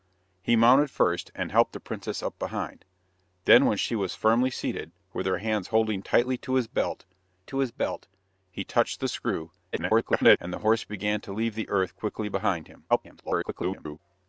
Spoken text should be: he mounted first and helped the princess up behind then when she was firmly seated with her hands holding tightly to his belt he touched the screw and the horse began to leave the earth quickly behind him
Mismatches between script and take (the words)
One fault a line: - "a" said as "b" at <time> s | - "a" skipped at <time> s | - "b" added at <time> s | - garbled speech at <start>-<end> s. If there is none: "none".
- "to his belt" added at 7.4 s
- garbled speech at 9.7-10.4 s
- garbled speech at 12.9-14.0 s